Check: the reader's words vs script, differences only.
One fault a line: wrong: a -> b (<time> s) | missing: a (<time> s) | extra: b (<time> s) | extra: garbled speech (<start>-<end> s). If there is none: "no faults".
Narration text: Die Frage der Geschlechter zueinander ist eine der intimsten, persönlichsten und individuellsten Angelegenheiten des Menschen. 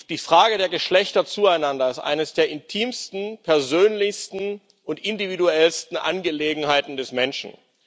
no faults